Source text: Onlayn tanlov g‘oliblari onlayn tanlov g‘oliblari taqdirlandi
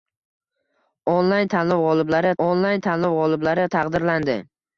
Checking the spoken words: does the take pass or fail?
pass